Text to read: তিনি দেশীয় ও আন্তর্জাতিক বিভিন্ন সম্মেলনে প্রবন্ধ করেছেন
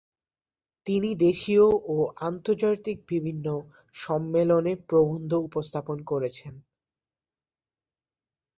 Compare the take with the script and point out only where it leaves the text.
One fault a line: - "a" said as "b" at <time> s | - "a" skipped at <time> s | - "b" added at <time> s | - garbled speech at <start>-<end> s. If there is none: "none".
- "উপস্থাপন" added at 5.5 s